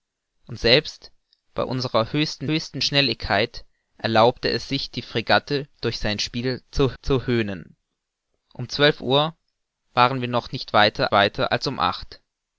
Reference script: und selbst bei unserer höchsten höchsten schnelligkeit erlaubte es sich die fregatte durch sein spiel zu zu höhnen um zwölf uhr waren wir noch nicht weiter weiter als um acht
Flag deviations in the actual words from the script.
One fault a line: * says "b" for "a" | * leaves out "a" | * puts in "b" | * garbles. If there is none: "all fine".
all fine